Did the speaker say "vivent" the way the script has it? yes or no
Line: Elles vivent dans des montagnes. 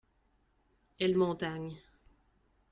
no